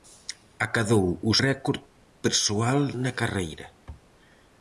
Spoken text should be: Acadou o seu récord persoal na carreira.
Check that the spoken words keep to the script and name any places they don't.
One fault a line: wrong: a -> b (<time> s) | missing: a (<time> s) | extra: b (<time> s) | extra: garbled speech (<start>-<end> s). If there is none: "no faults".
missing: seu (1.3 s)